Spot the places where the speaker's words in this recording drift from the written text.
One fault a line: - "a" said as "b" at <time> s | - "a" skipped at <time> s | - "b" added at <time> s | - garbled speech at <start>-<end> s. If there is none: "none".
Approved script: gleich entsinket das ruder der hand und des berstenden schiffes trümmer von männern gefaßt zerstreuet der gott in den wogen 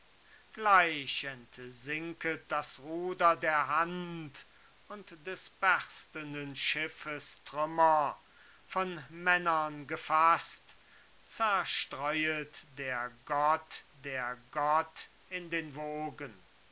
- "der gott" added at 14.0 s